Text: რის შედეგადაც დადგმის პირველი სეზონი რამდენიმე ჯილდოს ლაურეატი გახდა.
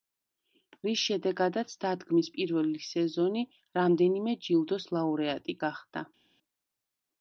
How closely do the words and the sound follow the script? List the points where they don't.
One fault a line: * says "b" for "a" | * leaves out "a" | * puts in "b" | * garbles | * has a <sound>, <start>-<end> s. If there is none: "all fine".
all fine